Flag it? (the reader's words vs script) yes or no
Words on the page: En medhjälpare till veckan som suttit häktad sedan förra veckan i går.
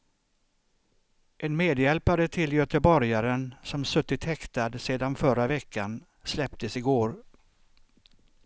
yes